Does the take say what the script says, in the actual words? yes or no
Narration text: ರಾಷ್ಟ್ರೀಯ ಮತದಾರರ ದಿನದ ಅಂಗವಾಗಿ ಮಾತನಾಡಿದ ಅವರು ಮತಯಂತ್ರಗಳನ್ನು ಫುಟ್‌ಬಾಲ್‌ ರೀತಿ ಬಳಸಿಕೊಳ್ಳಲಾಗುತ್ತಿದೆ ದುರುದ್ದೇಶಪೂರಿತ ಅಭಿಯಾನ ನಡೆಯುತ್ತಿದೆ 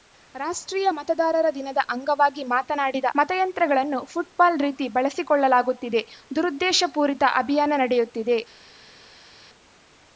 no